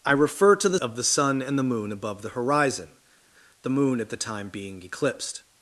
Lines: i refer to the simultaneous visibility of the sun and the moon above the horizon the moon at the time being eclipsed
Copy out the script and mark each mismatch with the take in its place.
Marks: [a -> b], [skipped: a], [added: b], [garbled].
i refer to the [skipped: simultaneous visibility] of the sun and the moon above the horizon the moon at the time being eclipsed